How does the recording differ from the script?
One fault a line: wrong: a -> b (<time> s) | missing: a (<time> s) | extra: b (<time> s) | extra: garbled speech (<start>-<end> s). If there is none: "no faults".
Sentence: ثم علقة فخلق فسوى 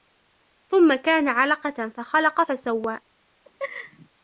extra: كان (0.9 s)